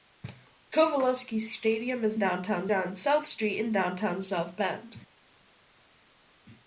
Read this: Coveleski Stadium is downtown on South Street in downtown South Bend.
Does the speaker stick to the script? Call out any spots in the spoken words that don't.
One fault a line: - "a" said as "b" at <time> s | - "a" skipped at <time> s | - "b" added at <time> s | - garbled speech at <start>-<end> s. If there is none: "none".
none